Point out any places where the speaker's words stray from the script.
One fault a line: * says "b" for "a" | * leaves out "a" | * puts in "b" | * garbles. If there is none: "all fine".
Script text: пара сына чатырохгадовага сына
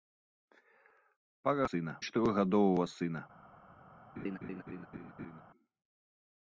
all fine